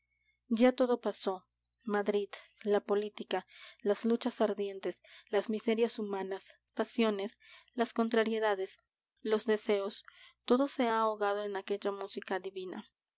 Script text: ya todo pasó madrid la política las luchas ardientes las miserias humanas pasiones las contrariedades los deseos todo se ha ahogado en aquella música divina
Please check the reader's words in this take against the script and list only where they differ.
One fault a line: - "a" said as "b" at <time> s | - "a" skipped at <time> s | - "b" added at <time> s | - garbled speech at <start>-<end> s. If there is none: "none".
none